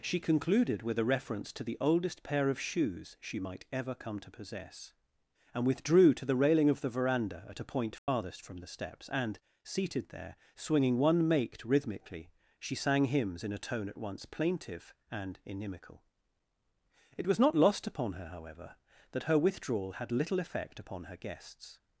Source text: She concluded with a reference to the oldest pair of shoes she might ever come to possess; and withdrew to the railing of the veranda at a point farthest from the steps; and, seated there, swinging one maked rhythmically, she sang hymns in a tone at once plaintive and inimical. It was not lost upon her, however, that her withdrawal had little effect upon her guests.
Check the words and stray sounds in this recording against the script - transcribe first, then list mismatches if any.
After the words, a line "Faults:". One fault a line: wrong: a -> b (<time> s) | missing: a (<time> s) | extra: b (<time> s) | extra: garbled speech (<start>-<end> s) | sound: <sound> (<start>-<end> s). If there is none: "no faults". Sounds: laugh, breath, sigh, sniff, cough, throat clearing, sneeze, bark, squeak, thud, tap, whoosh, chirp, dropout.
She concluded with a reference to the oldest pair of shoes she might ever come to possess; and withdrew to the railing of the veranda at a point farthest from the steps; and, seated there, swinging one maked rhythmically, she sang hymns in a tone at once plaintive and inimical. It was not lost upon her, however, that her withdrawal had little effect upon her guests.
Faults:
sound: dropout (8.0-8.1 s)